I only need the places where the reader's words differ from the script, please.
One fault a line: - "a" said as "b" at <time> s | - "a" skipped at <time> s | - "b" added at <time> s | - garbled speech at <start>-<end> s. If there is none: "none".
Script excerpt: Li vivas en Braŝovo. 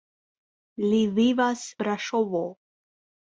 - "en" skipped at 1.7 s